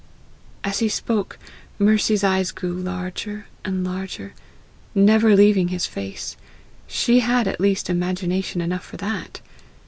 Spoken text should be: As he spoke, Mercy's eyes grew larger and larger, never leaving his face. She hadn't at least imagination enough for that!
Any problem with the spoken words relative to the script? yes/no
yes